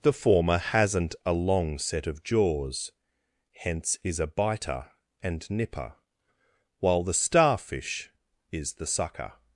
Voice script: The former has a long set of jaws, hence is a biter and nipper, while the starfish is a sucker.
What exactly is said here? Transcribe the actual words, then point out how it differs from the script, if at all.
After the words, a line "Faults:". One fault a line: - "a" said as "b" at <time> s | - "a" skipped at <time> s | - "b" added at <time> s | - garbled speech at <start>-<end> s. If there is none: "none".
The former hasn't a long set of jaws, hence is a biter and nipper, while the starfish is the sucker.
Faults:
- "has" said as "hasn't" at 0.6 s
- "a" said as "the" at 8.7 s